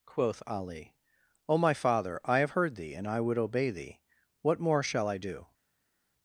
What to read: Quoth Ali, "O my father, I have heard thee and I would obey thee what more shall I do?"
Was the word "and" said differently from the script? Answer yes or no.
no